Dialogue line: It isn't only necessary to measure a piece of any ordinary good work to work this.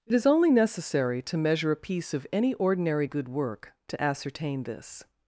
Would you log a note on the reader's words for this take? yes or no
yes